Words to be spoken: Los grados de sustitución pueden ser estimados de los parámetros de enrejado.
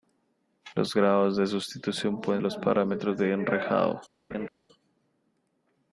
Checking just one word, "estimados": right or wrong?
wrong